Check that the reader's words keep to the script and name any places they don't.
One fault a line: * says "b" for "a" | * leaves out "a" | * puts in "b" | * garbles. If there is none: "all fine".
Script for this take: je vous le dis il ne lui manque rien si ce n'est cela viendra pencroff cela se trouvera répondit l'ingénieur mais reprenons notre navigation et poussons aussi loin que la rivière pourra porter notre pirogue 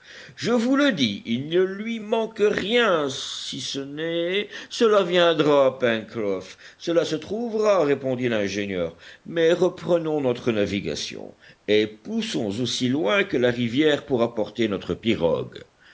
all fine